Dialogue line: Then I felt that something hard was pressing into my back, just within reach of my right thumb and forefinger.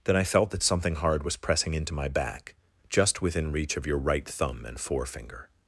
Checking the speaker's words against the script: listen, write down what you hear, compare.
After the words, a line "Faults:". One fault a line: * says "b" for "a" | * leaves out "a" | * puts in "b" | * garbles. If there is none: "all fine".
Then I felt that something hard was pressing into my back, just within reach of your right thumb and forefinger.
Faults:
* says "your" for "my"